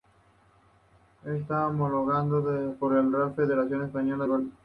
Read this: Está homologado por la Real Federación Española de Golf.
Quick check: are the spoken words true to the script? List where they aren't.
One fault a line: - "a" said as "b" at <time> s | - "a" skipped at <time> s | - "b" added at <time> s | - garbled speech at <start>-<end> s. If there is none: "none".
- "de" skipped at 4.2 s